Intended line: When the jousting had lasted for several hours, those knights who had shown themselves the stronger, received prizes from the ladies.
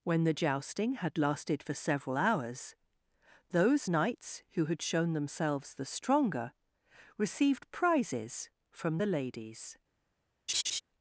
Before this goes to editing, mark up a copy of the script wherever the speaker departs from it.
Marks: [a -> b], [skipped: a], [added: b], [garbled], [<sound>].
When the jousting had lasted for several hours, those knights who had shown themselves the stronger, received prizes from the ladies. [laugh]